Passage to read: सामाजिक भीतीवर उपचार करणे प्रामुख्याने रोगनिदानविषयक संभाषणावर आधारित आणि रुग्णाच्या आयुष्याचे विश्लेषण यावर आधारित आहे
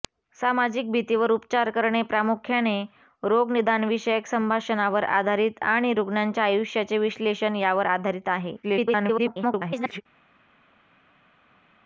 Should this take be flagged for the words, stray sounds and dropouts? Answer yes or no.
yes